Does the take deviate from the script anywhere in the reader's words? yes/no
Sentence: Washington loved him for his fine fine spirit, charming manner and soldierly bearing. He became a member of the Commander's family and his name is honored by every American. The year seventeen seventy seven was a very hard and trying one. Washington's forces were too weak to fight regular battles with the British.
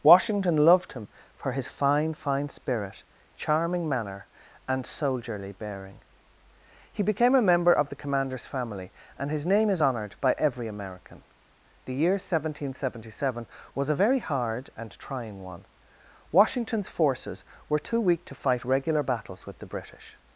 no